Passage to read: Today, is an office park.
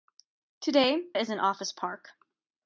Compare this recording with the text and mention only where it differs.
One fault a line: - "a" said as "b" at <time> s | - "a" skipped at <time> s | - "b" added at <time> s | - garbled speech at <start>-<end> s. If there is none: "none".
none